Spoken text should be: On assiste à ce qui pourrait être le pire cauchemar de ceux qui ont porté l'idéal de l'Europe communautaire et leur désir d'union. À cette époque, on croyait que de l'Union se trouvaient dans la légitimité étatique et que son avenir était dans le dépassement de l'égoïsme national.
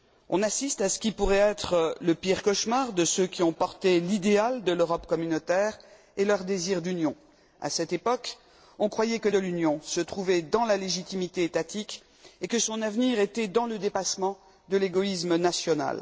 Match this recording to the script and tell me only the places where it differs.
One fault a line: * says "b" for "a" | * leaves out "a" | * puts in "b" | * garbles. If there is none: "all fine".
all fine